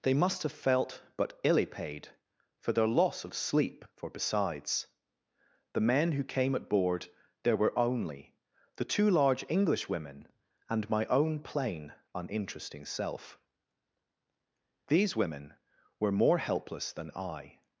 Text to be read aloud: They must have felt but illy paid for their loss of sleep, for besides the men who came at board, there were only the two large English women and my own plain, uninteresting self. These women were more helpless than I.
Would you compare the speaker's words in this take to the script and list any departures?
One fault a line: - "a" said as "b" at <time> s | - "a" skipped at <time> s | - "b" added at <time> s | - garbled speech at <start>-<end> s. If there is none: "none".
none